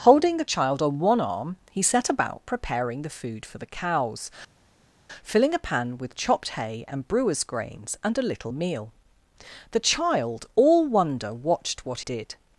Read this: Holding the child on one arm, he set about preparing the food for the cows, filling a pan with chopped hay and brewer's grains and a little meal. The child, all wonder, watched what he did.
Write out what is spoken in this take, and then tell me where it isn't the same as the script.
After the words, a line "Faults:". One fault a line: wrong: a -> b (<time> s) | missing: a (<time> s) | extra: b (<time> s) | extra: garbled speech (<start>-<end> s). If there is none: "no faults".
Holding the child on one arm, he set about preparing the food for the cows, filling a pan with chopped hay and brewer's grains and a little meal. The child, all wonder, watched what did.
Faults:
missing: he (12.0 s)